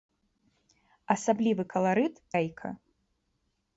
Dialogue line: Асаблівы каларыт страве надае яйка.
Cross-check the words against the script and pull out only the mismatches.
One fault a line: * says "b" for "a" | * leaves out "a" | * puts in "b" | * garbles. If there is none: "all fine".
* leaves out "страве надае"